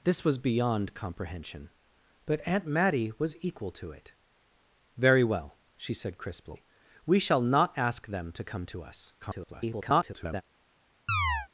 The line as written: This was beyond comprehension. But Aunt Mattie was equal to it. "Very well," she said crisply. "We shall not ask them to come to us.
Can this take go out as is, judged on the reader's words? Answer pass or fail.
fail